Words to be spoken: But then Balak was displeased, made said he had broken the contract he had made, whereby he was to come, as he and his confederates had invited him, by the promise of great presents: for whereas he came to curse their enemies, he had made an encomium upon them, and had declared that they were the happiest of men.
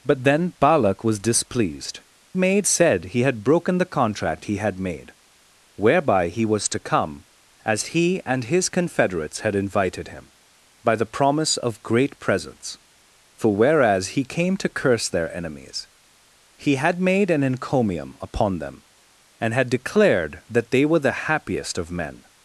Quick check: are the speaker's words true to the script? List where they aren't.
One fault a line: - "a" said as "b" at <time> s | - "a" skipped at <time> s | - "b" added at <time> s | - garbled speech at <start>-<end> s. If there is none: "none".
none